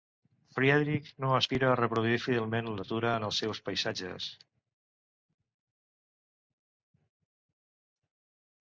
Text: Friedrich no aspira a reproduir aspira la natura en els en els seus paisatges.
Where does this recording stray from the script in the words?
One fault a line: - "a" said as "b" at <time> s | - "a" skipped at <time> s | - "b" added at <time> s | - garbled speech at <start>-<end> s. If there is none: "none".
- "aspira" said as "fidelment" at 2.2 s
- "en els" skipped at 3.4 s